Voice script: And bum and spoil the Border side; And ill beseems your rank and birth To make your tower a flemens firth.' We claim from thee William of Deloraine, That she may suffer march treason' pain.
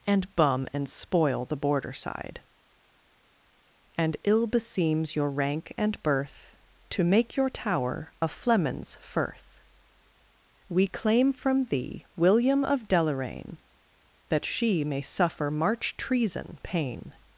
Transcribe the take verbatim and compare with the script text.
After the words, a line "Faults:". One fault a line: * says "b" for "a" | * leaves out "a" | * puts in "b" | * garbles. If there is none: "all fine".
And bum and spoil the Border side; And ill beseems your rank and birth To make your tower a flemens firth.' We claim from thee William of Deloraine, That she may suffer march treason' pain.
Faults:
all fine